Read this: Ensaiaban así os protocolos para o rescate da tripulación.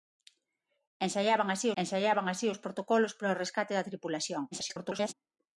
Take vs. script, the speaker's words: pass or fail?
fail